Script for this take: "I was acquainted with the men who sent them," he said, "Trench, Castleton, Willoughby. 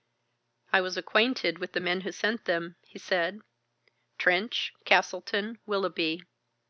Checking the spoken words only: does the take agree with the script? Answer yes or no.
yes